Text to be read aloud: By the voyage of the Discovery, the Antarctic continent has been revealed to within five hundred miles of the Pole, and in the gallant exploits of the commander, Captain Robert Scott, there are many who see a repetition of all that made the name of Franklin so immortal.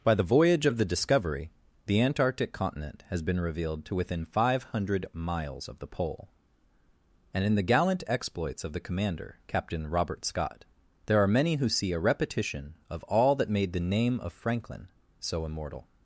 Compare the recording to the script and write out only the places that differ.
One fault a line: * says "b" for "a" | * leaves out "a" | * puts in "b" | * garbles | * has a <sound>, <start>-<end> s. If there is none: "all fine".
all fine